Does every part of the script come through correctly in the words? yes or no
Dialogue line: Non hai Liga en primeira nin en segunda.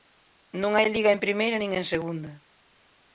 yes